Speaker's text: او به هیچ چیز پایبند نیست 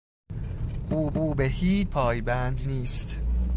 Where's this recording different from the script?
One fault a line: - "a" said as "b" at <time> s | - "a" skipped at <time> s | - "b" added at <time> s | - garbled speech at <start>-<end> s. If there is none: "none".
- "او" added at 1.1 s
- "چیز" skipped at 1.9 s